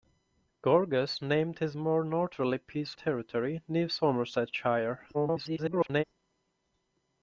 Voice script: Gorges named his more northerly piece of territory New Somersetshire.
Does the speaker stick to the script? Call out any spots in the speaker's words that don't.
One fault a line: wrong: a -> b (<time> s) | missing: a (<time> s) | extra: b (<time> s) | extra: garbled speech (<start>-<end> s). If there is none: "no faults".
missing: of (3.0 s)
extra: garbled speech (5.1-6.0 s)